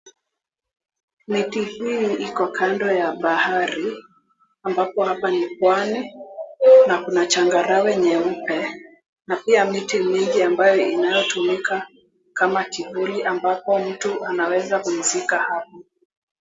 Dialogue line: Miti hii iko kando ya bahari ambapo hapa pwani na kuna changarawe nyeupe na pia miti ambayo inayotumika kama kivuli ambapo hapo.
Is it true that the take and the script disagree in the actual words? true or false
true